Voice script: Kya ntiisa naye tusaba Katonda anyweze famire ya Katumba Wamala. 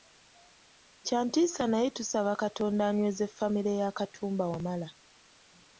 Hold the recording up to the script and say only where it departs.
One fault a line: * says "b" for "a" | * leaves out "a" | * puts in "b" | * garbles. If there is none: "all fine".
all fine